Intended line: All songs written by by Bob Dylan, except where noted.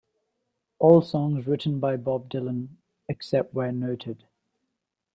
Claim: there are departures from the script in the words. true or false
true